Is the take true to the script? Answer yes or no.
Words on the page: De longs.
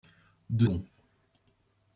yes